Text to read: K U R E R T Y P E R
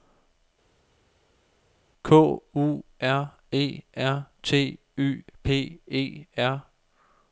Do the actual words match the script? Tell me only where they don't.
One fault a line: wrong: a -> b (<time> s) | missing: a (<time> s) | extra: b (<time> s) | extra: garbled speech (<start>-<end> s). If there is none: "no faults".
no faults